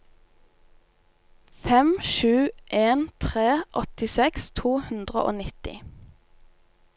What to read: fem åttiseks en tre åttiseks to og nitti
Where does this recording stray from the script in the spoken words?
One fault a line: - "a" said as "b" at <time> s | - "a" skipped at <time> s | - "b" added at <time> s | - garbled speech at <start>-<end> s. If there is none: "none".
- "åttiseks" said as "sju" at 2.1 s
- "hundre" added at 4.9 s